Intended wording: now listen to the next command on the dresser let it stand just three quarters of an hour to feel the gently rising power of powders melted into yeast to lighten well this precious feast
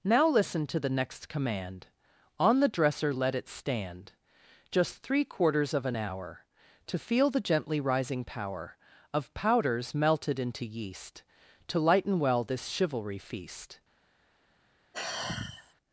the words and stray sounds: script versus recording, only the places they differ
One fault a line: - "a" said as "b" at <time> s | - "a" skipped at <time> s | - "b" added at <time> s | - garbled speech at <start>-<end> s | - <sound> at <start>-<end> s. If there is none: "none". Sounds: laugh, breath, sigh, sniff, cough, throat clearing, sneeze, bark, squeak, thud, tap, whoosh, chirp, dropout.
- "precious" said as "chivalry" at 12.7 s
- sigh at 14.9-15.7 s